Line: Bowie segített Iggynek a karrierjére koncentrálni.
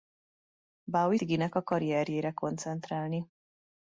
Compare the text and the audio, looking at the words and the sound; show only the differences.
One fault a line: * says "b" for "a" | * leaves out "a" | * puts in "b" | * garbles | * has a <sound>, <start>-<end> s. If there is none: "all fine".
* leaves out "segített"